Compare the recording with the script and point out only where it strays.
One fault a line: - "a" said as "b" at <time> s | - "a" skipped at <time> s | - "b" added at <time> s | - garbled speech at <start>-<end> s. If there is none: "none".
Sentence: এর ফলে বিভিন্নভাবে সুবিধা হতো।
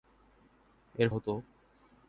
- "ফলে বিভিন্নভাবে সুবিধা" skipped at 1.1 s